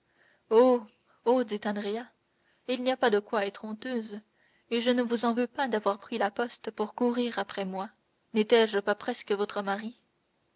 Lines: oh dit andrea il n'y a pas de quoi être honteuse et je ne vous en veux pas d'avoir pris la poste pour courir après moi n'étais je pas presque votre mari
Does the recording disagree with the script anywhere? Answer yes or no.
no